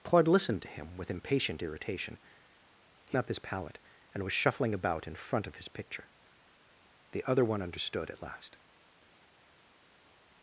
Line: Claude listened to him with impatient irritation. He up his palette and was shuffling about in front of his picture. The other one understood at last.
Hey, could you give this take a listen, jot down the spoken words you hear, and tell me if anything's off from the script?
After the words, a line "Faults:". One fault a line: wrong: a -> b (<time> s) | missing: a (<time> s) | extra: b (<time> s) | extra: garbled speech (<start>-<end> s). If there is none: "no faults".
Claude listened to him with impatient irritation. He up his palette and was shuffling about in front of his picture. The other one understood at last.
Faults:
no faults